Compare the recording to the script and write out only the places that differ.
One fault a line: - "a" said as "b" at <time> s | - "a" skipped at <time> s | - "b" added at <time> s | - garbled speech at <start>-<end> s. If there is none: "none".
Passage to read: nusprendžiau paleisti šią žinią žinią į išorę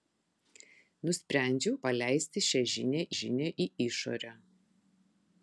none